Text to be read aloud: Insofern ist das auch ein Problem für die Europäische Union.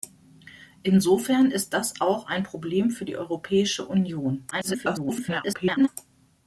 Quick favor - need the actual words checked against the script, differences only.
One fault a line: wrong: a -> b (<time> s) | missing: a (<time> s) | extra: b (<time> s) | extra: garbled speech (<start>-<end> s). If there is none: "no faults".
extra: garbled speech (4.5-5.9 s)